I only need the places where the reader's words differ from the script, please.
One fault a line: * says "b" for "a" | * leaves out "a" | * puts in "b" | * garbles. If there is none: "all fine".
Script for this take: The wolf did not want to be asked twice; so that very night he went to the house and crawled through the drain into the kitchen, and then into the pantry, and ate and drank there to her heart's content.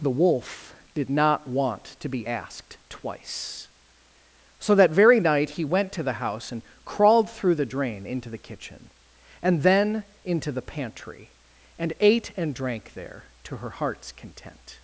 all fine